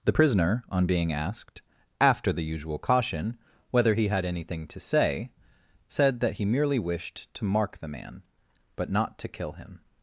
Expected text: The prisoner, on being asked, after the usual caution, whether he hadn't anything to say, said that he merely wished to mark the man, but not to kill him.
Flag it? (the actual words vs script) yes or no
yes